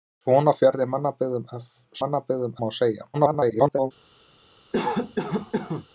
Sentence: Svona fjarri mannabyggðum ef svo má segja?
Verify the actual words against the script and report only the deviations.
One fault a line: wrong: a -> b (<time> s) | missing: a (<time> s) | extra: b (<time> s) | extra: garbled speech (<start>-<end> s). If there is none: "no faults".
wrong: svo -> mannabyggðum (2.0 s)
extra: garbled speech (3.1-3.9 s)